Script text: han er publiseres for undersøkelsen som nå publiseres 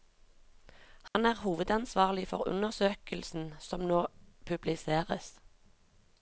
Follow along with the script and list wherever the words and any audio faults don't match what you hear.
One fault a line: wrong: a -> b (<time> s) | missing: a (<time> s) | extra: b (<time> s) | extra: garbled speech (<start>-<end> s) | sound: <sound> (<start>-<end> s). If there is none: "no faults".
sound: dropout (1.1-1.1 s)
wrong: publiseres -> hovedansvarlig (1.4 s)